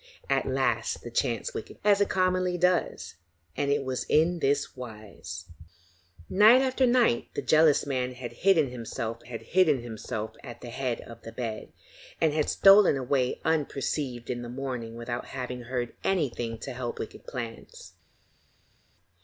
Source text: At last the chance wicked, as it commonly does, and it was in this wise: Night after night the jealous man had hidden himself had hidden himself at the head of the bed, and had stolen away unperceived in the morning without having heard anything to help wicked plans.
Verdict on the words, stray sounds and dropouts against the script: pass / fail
pass